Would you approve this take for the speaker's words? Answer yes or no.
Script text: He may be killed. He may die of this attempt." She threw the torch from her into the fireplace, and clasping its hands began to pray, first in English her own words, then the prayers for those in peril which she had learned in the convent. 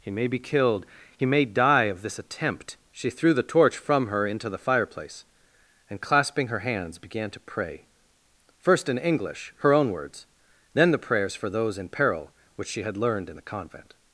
no